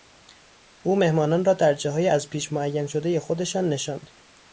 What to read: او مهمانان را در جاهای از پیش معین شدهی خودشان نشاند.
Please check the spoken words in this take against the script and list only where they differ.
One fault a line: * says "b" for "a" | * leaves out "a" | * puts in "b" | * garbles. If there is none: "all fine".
all fine